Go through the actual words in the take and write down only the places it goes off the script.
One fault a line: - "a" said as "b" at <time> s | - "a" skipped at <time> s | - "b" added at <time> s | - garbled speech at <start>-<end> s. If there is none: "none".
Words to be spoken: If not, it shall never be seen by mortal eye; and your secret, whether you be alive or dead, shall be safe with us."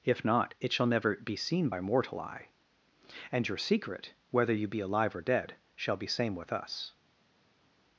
- "safe" said as "same" at 6.1 s